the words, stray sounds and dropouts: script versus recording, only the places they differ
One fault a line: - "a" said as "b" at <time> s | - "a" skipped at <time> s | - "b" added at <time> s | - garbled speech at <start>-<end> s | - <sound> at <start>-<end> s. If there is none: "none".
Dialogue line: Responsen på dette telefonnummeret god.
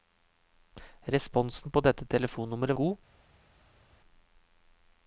none